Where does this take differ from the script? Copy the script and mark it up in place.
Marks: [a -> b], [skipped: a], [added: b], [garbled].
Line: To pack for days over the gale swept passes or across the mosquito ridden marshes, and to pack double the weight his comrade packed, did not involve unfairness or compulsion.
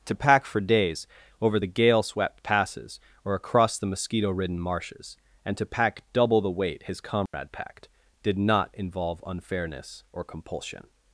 To pack for days over the gale swept passes or across the mosquito ridden marshes, and to pack double the weight his comrade packed, did not involve unfairness or compulsion.